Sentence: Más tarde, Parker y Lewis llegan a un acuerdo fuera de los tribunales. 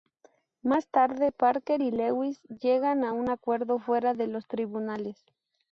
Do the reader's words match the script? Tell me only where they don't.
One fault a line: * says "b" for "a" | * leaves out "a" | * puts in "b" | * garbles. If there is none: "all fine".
all fine